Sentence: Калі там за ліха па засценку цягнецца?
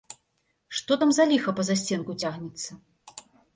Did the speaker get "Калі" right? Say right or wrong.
wrong